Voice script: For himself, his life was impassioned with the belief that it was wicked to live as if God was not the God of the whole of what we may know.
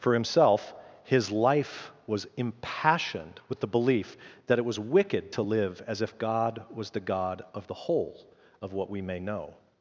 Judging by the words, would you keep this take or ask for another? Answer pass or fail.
fail